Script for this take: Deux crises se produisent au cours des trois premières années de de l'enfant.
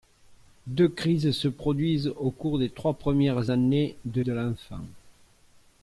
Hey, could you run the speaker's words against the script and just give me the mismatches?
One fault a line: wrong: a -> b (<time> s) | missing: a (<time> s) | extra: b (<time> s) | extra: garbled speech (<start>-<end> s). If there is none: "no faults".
no faults